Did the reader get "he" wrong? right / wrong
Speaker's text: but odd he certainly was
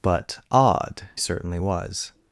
wrong